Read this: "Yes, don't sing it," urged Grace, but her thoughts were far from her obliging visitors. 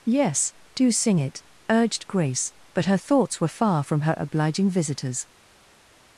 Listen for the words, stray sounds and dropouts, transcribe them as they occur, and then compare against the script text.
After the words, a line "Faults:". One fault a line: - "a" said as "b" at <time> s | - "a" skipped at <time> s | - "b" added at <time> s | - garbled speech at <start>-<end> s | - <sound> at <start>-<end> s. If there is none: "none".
"Yes, do sing it," urged Grace, but her thoughts were far from her obliging visitors.
Faults:
- "don't" said as "do" at 0.7 s